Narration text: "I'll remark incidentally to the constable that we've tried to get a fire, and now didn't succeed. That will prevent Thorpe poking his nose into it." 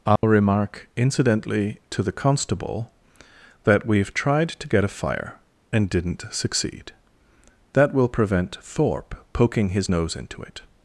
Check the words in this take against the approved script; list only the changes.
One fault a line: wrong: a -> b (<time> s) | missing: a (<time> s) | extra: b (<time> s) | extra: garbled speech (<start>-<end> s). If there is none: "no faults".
missing: now (5.9 s)